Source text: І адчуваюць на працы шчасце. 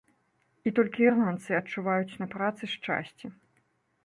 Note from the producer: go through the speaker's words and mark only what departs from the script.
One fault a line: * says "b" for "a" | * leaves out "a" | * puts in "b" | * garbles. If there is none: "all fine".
* puts in "толькі ірландцы"